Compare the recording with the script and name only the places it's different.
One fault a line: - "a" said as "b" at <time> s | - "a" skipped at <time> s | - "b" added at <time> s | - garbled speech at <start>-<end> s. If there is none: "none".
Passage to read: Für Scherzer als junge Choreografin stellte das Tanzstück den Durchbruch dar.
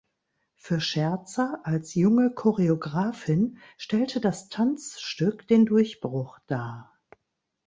none